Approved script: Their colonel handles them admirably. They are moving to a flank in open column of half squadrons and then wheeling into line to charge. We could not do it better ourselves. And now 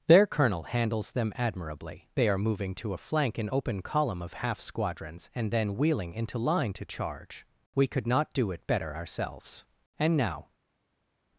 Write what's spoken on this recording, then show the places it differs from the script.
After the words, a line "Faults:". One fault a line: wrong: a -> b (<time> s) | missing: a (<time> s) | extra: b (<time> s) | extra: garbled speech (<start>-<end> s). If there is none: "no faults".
Their colonel handles them admirably. They are moving to a flank in open column of half squadrons and then wheeling into line to charge. We could not do it better ourselves. And now
Faults:
no faults